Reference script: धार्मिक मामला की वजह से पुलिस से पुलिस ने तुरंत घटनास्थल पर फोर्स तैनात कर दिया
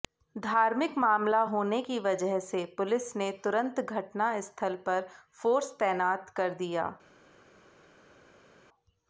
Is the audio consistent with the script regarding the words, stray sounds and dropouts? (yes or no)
no